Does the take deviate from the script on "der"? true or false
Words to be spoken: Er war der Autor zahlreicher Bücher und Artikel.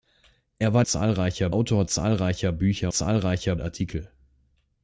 true